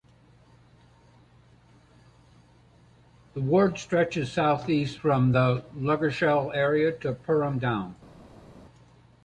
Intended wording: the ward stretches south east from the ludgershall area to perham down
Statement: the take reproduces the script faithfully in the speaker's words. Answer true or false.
true